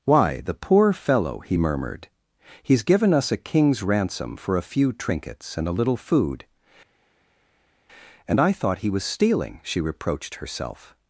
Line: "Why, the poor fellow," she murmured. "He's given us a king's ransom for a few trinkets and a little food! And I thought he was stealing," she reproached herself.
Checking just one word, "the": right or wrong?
right